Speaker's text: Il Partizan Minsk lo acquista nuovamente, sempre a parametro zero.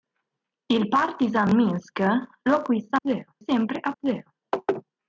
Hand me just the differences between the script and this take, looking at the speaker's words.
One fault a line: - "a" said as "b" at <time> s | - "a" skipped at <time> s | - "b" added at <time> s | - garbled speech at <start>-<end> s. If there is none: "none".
- "nuovamente" said as "zero" at 3.0 s
- "parametro" skipped at 3.9 s